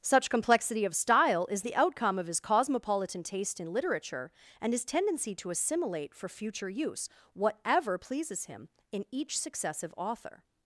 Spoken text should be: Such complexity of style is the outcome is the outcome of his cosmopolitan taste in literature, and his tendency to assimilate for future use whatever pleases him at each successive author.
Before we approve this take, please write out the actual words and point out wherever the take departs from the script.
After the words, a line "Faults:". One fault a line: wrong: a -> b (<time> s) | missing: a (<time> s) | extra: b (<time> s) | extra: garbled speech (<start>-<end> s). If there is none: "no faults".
Such complexity of style is the outcome of his cosmopolitan taste in literature, and his tendency to assimilate for future use whatever pleases him in each successive author.
Faults:
missing: is the outcome (2.2 s)
wrong: at -> in (8.9 s)